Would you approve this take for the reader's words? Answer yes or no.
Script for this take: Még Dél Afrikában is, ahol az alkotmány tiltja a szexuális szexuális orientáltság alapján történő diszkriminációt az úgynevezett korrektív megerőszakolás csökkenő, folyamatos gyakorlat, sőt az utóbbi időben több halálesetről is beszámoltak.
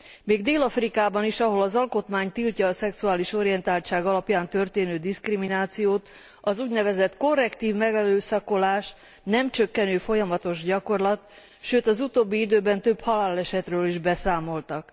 no